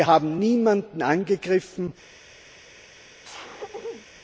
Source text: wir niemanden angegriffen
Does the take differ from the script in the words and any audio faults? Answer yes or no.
yes